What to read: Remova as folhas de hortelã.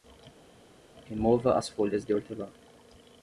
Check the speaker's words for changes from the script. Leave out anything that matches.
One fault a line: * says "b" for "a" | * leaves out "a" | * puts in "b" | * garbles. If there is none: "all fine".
all fine